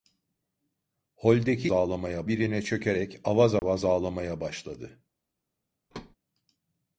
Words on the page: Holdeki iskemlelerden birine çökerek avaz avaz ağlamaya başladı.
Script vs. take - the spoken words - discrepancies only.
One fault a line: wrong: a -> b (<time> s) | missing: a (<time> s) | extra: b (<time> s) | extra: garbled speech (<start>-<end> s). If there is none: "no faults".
wrong: iskemlelerden -> ağlamaya (1.7 s)